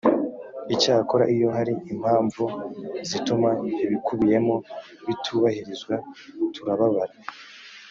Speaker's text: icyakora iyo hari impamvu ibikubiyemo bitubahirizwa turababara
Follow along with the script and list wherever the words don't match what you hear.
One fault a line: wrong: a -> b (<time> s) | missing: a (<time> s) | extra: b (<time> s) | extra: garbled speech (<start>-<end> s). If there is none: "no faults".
extra: zituma (3.1 s)